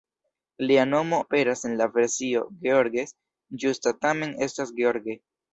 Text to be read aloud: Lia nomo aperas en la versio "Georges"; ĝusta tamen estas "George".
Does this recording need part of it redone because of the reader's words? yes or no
no